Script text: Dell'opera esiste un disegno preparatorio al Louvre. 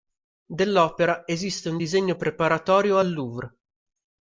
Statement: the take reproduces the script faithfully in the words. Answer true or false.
true